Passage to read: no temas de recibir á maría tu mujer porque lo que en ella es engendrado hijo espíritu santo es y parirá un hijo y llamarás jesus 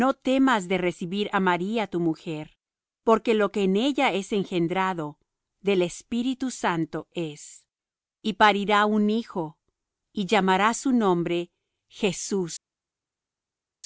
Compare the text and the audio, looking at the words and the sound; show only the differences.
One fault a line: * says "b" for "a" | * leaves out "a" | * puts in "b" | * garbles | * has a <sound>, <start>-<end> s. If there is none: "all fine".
* says "del" for "hijo"
* puts in "su nombre"